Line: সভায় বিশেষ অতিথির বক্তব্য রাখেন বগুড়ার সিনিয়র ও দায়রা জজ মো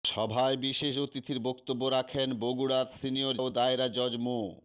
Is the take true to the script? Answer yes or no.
yes